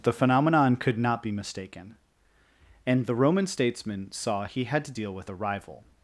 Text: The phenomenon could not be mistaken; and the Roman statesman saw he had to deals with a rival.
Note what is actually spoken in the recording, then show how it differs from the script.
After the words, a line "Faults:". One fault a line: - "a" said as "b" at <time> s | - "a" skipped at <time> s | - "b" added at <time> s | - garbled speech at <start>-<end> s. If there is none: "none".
The phenomenon could not be mistaken; and the Roman statesman saw he had to deal with a rival.
Faults:
- "deals" said as "deal" at 4.9 s